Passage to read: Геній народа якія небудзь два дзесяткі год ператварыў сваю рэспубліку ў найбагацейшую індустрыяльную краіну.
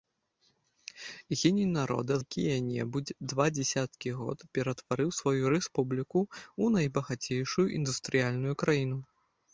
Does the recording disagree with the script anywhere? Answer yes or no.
no